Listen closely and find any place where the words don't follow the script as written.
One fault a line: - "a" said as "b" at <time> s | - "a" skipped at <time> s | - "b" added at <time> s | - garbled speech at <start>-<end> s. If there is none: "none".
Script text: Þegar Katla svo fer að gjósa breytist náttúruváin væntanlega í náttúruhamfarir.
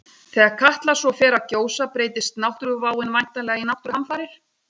none